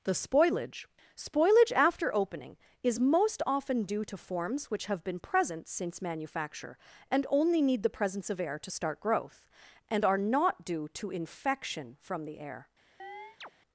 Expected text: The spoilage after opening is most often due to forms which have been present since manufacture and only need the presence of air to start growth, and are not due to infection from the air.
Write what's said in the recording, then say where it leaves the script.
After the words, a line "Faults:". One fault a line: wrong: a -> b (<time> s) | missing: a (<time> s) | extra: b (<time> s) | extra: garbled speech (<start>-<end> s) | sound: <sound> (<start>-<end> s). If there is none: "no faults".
The spoilage spoilage after opening is most often due to forms which have been present since manufacture and only need the presence of air to start growth, and are not due to infection from the air.
Faults:
extra: spoilage (1.1 s)
sound: chirp (13.0-13.5 s)